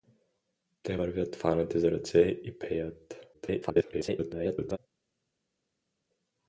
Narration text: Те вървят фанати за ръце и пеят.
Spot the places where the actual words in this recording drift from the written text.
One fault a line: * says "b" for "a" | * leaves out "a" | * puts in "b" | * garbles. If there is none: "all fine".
* garbles